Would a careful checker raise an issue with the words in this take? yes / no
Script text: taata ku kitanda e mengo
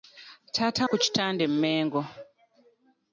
no